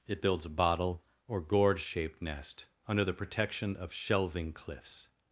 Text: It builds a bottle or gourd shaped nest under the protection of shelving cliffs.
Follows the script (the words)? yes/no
yes